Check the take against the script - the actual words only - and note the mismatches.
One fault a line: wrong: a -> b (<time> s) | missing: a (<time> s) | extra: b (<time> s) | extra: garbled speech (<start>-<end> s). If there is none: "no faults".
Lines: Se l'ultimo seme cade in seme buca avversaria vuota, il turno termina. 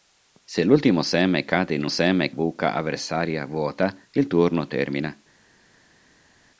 no faults